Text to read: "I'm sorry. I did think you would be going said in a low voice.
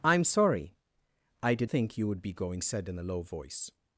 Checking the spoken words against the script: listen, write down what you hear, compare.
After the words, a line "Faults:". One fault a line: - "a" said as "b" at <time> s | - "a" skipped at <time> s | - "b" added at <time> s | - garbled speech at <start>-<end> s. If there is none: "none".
"I'm sorry. I did think you would be going said in a low voice.
Faults:
none